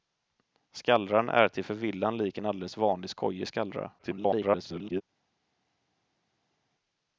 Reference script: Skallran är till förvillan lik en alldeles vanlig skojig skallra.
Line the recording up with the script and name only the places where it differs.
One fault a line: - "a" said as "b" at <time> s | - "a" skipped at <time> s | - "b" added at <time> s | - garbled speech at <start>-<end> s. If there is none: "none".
- garbled speech at 4.0-5.0 s